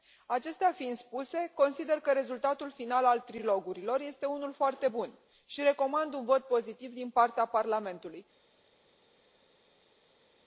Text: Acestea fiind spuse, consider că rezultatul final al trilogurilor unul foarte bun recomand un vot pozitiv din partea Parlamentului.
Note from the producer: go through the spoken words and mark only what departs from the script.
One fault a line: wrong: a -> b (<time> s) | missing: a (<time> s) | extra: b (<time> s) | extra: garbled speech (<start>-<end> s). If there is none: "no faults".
extra: este (4.0 s)
extra: și (5.4 s)